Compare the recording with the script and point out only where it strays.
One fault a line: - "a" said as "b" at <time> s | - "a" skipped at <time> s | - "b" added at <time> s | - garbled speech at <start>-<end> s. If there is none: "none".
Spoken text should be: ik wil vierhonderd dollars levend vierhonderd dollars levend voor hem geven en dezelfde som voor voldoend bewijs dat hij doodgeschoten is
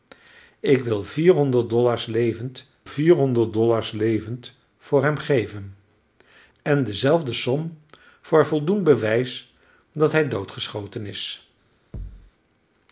none